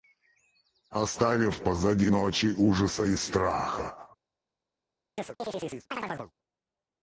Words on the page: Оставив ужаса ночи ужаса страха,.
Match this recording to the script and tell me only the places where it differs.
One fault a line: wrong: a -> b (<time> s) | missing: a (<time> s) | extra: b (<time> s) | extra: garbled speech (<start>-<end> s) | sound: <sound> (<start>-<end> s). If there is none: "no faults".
wrong: ужаса -> позади (1.6 s)
extra: и (3.0 s)
sound: chirp (5.2-6.3 s)